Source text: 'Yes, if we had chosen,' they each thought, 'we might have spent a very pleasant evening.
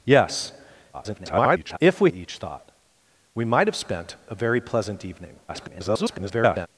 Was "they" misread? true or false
true